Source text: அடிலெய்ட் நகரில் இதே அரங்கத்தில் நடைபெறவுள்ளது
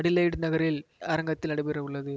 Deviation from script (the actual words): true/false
true